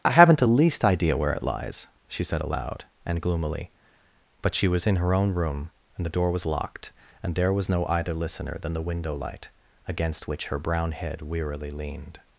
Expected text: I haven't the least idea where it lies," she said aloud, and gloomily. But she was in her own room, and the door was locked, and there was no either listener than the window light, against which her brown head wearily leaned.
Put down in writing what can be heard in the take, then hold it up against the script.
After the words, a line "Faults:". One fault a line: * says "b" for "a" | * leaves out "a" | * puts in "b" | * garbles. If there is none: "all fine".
I haven't the least idea where it lies," she said aloud, and gloomily. But she was in her own room, and the door was locked, and there was no either listener than the window light, against which her brown head wearily leaned.
Faults:
all fine